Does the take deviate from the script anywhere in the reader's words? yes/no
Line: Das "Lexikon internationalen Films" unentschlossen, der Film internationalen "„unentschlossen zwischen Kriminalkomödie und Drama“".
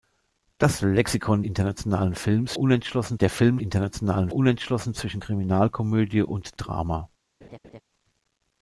no